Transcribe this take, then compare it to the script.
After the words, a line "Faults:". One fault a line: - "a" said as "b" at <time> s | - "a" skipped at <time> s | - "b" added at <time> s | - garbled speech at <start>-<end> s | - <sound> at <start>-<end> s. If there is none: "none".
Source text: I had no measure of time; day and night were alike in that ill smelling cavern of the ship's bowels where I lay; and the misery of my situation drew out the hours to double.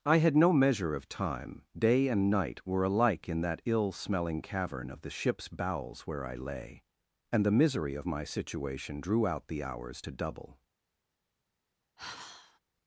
I had no measure of time; day and night were alike in that ill smelling cavern of the ship's bowels where I lay; and the misery of my situation drew out the hours to double.
Faults:
- sigh at 12.0-12.6 s